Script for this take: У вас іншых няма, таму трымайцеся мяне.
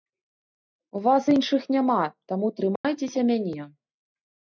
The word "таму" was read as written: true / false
true